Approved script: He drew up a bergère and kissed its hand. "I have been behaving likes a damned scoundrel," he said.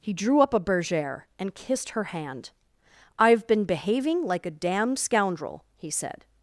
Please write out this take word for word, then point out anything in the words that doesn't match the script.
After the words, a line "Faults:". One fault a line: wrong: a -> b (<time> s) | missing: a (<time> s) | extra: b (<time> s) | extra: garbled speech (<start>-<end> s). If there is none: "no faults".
He drew up a bergère and kissed her hand. "I have been behaving like a damned scoundrel," he said.
Faults:
wrong: its -> her (1.9 s)
wrong: likes -> like (4.2 s)